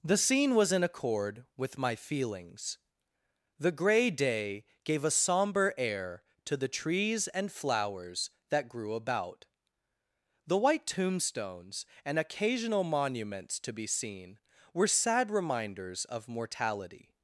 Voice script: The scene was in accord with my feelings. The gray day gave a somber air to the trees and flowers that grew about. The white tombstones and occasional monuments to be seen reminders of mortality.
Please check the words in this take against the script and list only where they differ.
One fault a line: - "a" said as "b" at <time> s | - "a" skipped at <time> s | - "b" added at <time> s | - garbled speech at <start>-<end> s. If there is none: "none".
- "were sad" added at 14.7 s